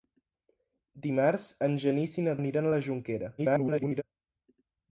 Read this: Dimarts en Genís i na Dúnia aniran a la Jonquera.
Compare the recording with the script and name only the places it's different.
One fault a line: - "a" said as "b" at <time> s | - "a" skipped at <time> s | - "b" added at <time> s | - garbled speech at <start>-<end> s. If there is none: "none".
- "Dúnia" skipped at 2.4 s
- garbled speech at 3.4-4.0 s